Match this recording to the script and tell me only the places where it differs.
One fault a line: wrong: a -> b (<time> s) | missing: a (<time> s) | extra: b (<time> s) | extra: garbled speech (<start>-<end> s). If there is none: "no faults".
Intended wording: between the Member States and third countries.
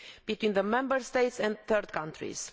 no faults